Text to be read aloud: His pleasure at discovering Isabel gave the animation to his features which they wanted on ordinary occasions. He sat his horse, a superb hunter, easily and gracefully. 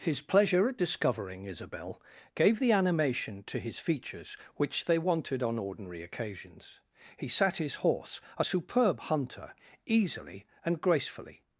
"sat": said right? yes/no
yes